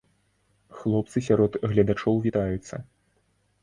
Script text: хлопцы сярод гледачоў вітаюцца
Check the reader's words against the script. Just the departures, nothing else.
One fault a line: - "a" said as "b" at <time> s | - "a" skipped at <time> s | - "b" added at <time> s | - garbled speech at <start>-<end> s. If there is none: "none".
none